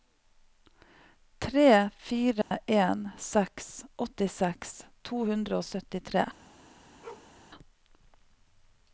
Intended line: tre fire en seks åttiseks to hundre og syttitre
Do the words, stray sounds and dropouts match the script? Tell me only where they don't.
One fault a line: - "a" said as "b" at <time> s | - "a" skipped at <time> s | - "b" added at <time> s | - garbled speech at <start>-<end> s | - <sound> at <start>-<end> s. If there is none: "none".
- dropout at 2.4-2.5 s
- bark at 7.0-7.3 s